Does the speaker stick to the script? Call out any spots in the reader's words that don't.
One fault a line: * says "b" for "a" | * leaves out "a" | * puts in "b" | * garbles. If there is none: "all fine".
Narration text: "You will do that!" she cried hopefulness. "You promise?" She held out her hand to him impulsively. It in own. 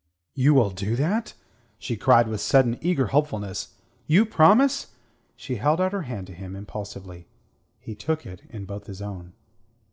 * puts in "with sudden eager"
* puts in "He took"
* puts in "both his"